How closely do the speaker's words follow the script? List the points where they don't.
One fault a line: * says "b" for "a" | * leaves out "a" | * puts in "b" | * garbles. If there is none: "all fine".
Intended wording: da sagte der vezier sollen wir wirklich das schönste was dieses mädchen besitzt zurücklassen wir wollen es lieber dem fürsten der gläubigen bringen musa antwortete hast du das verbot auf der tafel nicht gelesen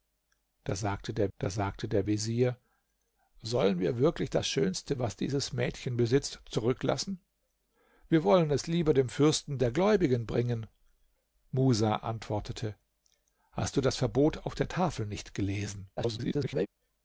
* puts in "da sagte der"
* garbles